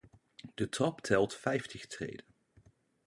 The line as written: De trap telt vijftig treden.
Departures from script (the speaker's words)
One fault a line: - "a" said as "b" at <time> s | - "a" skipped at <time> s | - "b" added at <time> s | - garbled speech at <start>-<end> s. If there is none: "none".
none